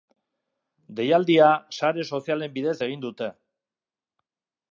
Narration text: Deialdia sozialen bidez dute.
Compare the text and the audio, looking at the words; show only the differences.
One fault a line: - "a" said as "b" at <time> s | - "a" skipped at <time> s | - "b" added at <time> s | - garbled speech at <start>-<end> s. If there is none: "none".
- "sare" added at 1.8 s
- "egin" added at 2.9 s